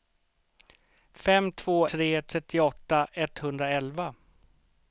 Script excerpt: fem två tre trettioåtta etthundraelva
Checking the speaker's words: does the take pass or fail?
pass